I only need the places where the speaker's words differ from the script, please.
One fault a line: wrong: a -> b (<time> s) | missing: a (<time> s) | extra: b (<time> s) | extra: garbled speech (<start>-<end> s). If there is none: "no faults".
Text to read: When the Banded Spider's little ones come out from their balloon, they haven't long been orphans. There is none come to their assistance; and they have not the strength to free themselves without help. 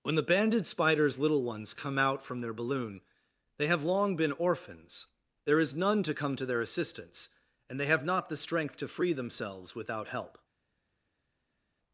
wrong: haven't -> have (3.7 s)
extra: to (6.0 s)